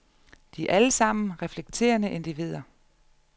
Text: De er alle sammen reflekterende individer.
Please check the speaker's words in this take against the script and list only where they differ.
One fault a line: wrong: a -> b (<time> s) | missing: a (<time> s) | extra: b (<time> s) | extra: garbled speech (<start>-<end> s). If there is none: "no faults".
no faults